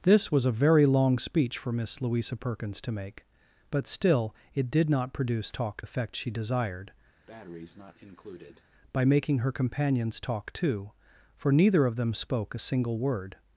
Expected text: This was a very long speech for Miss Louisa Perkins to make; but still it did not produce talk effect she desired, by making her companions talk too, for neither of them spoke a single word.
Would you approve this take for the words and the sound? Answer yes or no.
no